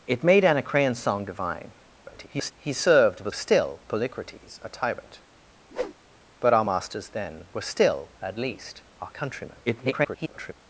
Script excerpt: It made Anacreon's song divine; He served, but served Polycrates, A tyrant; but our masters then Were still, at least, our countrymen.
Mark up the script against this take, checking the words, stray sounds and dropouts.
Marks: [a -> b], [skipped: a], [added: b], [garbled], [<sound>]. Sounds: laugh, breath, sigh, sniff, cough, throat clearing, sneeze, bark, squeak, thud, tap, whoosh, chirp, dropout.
It made Anacreon's song divine; [garbled] He served, but [served -> still] Polycrates, A tyrant; [whoosh] but our masters then Were still, at least, our countrymen. [garbled]